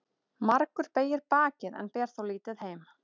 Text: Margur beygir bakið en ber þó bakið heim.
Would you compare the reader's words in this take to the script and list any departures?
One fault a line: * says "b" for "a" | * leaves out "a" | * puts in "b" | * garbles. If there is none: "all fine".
* says "lítið" for "bakið"